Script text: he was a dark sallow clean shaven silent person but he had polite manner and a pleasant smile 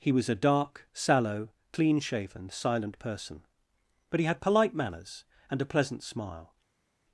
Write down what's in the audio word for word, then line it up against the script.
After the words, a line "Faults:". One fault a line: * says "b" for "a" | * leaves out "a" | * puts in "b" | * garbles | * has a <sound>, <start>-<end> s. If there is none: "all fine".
he was a dark sallow clean shaven silent person but he had polite manners and a pleasant smile
Faults:
* says "manners" for "manner"